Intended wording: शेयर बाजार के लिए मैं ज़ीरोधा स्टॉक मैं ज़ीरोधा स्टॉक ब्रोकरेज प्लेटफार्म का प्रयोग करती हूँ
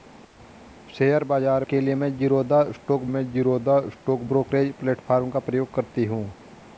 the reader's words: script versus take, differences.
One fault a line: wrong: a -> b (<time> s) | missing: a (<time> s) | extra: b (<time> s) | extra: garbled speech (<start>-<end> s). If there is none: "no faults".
no faults